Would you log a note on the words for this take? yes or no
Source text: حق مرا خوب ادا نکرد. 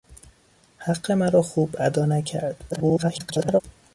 yes